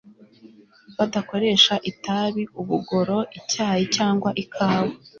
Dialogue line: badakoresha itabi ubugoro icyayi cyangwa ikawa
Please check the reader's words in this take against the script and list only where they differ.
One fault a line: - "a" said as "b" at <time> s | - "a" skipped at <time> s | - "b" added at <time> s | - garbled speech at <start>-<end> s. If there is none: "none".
none